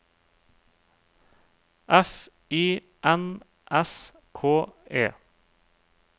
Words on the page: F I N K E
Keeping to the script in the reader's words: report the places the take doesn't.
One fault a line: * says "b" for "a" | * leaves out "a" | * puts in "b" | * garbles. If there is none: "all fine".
* puts in "S"